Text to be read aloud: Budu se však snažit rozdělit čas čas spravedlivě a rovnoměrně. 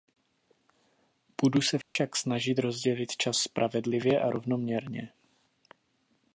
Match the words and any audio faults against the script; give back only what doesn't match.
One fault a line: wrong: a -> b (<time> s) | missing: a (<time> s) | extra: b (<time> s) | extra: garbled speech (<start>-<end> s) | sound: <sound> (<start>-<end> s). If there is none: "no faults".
sound: dropout (1.8-2.0 s)
missing: čas (3.4 s)